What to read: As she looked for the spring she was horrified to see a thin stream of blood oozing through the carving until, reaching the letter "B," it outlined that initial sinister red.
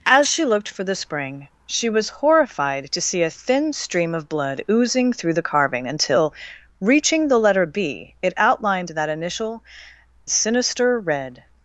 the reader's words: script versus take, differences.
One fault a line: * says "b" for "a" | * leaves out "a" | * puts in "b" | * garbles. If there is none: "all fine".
all fine